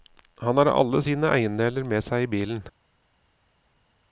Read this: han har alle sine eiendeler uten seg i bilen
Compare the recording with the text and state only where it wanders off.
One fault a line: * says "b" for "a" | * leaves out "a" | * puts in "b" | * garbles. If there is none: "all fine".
* says "med" for "uten"